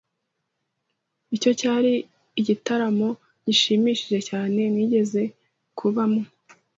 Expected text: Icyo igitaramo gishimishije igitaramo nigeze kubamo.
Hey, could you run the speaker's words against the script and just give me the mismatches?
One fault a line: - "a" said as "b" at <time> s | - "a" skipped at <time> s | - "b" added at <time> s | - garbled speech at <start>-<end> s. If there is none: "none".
- "cyari" added at 1.6 s
- "igitaramo" said as "cyane" at 4.3 s